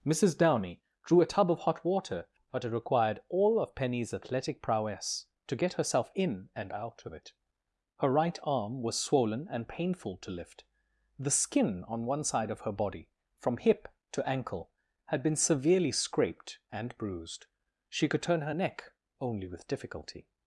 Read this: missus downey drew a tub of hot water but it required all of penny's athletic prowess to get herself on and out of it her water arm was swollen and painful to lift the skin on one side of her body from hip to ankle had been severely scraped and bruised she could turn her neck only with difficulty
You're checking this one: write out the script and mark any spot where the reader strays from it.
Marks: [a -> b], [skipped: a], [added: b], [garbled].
missus downey drew a tub of hot water but it required all of penny's athletic prowess to get herself [on -> in] and out of it her [water -> right] arm was swollen and painful to lift the skin on one side of her body from hip to ankle had been severely scraped and bruised she could turn her neck only with difficulty